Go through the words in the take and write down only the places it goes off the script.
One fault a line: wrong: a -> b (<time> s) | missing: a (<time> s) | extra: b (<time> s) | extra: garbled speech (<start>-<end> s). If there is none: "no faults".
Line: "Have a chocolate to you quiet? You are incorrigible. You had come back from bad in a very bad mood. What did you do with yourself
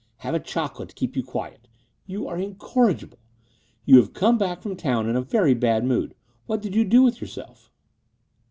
extra: keep (0.9 s)
wrong: had -> have (4.0 s)
wrong: bad -> town (4.8 s)